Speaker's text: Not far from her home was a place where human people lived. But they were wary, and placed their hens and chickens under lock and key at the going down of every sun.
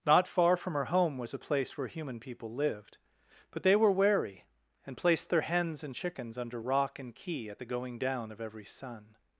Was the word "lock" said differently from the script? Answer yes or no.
yes